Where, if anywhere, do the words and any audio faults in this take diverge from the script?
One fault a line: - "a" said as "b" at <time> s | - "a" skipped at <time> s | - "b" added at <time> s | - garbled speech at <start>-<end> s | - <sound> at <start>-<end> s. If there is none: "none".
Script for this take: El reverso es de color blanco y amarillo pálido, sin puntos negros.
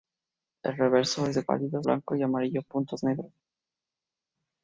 - "color" said as "pálido" at 1.4 s
- "pálido sin" skipped at 2.6 s